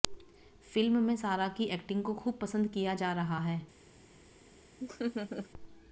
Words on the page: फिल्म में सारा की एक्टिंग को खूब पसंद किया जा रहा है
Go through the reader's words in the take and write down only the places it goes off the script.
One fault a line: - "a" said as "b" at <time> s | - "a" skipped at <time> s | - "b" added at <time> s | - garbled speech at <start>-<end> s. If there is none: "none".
none